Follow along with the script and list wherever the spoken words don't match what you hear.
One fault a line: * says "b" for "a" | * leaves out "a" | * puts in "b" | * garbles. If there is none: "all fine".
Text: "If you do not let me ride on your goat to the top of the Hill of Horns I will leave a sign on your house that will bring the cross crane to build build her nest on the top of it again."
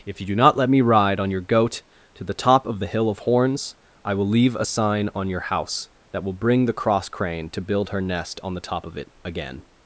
* leaves out "build"